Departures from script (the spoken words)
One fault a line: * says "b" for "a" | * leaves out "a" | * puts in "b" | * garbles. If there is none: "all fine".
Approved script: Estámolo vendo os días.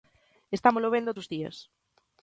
all fine